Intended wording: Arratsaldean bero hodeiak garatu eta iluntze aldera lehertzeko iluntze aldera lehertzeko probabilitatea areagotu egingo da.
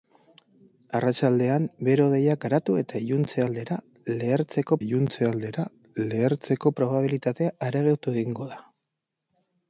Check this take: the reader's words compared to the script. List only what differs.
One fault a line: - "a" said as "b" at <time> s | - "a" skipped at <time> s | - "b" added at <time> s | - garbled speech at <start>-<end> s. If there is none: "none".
none